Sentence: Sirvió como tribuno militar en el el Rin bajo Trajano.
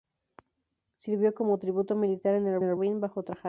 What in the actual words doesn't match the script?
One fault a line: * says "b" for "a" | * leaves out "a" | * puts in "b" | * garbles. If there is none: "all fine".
all fine